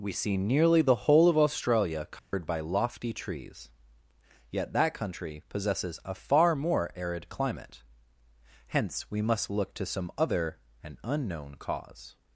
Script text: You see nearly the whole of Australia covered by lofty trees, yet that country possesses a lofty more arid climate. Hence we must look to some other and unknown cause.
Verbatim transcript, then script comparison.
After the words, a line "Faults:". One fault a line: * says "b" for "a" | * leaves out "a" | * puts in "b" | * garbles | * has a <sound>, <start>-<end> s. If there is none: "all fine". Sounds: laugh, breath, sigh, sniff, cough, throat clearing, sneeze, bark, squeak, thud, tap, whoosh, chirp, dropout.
We see nearly the whole of Australia covered by lofty trees, yet that country possesses a far more arid climate. Hence we must look to some other and unknown cause.
Faults:
* says "We" for "You"
* has a dropout, 2.2-2.3 s
* says "far" for "lofty"